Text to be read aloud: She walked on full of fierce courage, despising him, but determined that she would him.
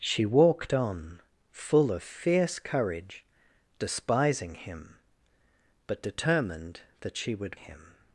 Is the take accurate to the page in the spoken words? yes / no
yes